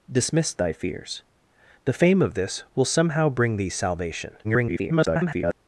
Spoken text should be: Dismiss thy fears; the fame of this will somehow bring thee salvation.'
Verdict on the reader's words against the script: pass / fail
fail